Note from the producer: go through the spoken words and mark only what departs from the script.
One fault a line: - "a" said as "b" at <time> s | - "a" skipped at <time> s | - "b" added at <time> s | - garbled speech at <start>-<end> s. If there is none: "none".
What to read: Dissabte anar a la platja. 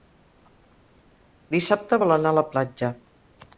- "vol" added at 2.0 s